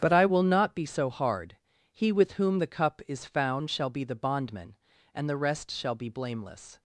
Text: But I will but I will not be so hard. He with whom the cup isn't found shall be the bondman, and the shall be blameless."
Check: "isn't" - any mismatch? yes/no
yes